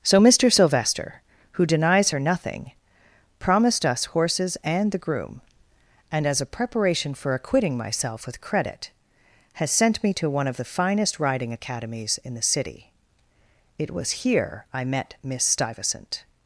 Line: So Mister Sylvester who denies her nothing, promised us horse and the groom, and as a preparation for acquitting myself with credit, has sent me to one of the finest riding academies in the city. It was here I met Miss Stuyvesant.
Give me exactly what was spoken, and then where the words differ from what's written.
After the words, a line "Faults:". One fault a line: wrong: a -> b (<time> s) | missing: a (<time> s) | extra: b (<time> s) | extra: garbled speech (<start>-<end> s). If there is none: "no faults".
So Mister Sylvester who denies her nothing, promised us horses and the groom, and as a preparation for acquitting myself with credit, has sent me to one of the finest riding academies in the city. It was here I met Miss Stuyvesant.
Faults:
wrong: horse -> horses (4.0 s)